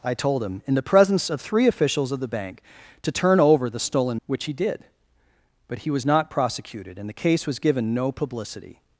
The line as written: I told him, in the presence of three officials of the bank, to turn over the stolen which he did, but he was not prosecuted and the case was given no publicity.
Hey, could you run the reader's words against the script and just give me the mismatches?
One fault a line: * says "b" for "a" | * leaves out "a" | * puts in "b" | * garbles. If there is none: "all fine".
all fine